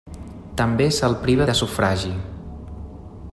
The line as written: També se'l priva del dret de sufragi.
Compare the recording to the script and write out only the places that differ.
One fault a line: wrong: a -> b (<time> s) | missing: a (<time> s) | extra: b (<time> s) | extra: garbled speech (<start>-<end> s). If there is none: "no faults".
missing: del dret (1.5 s)